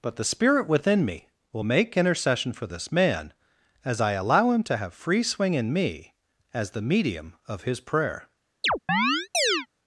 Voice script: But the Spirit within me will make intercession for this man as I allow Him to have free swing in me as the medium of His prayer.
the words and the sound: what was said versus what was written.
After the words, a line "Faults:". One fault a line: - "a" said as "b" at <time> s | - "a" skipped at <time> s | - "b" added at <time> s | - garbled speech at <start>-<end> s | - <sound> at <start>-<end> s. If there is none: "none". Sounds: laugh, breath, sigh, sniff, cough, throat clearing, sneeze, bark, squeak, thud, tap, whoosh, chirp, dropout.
But the Spirit within me will make intercession for this man as I allow Him to have free swing in me as the medium of His prayer.
Faults:
- chirp at 8.6-9.7 s